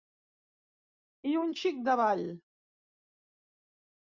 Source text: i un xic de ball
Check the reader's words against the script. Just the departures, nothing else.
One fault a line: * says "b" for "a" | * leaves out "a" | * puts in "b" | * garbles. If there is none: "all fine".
all fine